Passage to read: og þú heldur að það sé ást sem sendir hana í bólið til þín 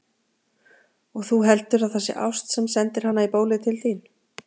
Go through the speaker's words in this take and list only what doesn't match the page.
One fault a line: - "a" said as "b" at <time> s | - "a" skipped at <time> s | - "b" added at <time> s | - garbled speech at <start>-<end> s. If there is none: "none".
none